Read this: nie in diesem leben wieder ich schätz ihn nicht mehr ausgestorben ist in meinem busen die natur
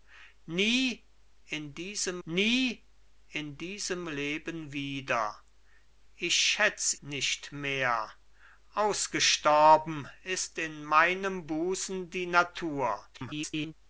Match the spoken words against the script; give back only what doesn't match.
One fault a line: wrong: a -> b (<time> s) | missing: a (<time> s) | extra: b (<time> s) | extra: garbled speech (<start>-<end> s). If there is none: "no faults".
extra: nie in diesem (2.3 s)
missing: ihn (6.9 s)
extra: garbled speech (13.1-13.7 s)